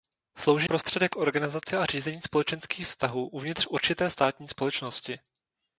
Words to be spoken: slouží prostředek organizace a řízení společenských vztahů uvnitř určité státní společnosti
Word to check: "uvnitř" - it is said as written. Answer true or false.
true